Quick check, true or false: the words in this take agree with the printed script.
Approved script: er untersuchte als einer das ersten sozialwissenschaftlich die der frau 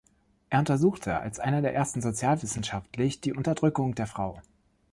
false